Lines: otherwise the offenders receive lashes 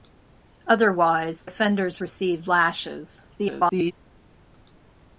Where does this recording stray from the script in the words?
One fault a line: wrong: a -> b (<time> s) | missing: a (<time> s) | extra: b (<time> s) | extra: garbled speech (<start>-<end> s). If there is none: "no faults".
missing: the (1.4 s)
extra: garbled speech (3.4-3.9 s)